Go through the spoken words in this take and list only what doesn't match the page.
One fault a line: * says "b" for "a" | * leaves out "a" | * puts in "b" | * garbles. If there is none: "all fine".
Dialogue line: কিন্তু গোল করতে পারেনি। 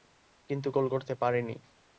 all fine